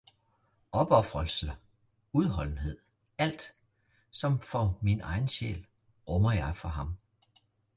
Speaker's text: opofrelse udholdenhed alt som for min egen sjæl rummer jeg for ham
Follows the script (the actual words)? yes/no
yes